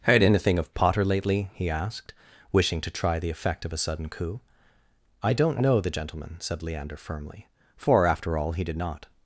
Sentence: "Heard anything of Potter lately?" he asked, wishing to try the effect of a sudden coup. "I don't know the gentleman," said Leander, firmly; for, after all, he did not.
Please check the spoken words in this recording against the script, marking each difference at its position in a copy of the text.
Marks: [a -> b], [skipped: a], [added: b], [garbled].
"Heard anything of Potter lately?" he asked, wishing to try the effect of a sudden coup. "I don't know the gentleman," said Leander, firmly; for, after all, he did not.